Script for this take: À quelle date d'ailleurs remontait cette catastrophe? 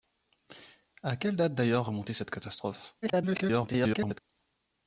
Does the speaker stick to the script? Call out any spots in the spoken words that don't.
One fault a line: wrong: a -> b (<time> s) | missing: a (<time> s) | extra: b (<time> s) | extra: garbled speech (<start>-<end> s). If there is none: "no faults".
extra: garbled speech (3.0-4.2 s)